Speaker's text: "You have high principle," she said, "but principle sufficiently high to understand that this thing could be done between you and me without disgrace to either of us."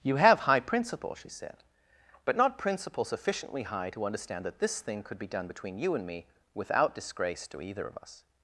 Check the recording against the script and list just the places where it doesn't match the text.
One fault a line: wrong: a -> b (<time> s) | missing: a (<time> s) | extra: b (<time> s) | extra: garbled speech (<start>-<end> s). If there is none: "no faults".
extra: not (2.4 s)